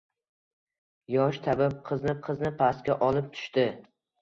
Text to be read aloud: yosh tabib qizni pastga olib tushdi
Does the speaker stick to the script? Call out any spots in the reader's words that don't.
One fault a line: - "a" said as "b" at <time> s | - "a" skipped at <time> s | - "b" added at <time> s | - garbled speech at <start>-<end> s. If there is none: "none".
- "qizni" added at 2.3 s